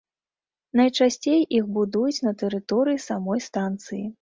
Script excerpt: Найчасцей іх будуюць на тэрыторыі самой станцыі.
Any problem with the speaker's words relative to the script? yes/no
no